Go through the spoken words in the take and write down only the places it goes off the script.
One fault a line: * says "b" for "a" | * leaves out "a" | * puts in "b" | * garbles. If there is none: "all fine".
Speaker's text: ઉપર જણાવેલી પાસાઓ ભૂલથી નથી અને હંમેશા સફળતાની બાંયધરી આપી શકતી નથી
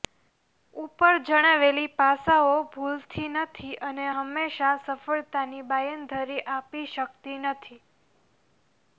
all fine